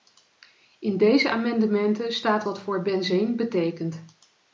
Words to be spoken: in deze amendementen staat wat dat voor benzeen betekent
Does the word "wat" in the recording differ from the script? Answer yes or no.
yes